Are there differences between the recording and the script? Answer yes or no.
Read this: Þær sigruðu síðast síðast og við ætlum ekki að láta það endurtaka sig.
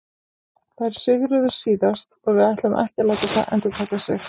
yes